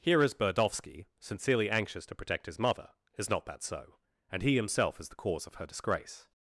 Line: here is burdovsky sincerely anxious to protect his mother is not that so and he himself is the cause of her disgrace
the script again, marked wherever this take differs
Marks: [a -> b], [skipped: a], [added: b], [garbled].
here is burdovsky sincerely anxious to protect his mother is not that so and he himself is the cause of her disgrace